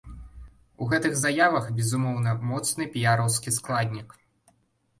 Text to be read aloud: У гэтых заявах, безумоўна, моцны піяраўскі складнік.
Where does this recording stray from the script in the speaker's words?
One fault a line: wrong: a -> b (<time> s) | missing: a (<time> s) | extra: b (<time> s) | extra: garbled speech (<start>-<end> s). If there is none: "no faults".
no faults